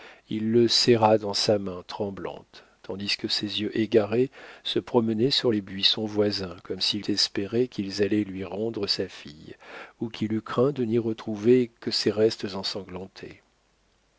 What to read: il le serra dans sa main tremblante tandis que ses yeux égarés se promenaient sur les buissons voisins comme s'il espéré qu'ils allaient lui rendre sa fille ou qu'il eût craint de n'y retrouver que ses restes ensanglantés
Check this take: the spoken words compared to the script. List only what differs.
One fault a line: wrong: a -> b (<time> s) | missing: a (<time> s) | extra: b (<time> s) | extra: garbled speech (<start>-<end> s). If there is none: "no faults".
no faults